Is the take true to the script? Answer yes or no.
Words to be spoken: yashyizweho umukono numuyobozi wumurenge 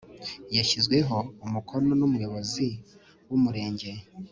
yes